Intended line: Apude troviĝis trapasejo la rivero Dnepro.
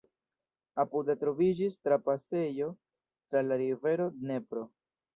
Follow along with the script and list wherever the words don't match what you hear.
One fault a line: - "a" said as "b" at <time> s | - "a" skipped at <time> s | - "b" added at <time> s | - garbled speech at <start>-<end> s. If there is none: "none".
- "tra" added at 2.8 s